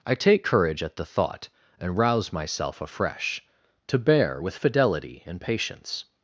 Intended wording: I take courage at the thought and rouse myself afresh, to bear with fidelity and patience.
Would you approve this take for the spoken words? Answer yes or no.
yes